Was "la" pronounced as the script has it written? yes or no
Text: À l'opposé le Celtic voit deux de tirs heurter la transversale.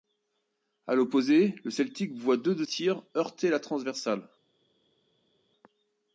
yes